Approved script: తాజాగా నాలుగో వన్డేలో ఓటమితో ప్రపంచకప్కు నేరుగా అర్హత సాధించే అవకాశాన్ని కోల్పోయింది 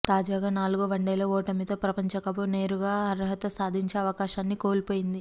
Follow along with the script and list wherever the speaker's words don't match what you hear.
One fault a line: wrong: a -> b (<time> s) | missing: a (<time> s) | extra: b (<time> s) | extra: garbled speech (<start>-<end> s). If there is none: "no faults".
no faults